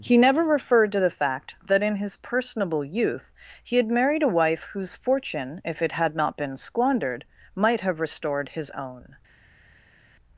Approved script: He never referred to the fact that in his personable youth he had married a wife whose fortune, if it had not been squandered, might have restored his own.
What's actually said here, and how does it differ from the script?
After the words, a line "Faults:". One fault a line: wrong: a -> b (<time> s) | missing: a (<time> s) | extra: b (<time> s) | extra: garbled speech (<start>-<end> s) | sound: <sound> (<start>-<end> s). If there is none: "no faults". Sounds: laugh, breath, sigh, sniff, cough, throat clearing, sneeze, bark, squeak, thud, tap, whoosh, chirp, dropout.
He never referred to the fact that in his personable youth he had married a wife whose fortune, if it had not been squandered, might have restored his own.
Faults:
no faults